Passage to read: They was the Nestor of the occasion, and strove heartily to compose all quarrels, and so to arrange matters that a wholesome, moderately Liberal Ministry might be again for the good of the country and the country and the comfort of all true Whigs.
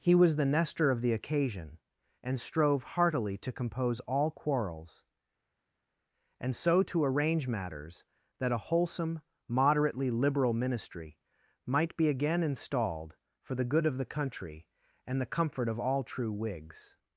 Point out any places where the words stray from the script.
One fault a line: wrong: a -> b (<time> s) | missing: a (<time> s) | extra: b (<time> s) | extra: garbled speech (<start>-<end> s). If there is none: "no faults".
wrong: They -> He (0.0 s)
extra: installed (12.4 s)
missing: country and the (15.3 s)